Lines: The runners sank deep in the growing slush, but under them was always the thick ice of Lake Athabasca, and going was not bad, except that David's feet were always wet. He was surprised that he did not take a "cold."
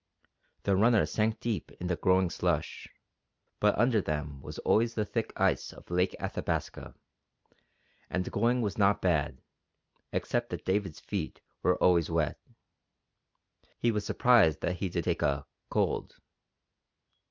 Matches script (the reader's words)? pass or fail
fail